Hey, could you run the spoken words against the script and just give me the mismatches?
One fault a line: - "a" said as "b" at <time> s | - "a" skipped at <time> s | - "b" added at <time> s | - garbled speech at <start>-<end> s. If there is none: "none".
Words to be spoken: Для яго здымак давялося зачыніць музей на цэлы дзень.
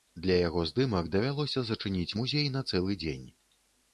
none